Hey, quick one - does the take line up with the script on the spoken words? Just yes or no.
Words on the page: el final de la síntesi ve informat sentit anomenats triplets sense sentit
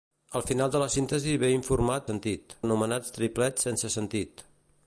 yes